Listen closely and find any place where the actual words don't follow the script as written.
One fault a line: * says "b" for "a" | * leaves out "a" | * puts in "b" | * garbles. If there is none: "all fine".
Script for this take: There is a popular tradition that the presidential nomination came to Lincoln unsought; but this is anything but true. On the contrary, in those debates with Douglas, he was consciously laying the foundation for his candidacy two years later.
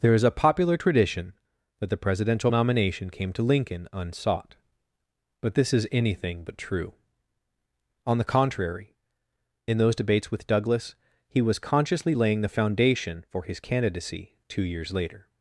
all fine